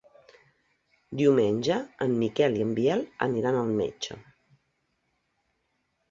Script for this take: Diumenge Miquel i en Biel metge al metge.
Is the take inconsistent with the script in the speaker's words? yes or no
yes